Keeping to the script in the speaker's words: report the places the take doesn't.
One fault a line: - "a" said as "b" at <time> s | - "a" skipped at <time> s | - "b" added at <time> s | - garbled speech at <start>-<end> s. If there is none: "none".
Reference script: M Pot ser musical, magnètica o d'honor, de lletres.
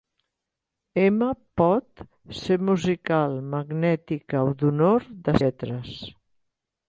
none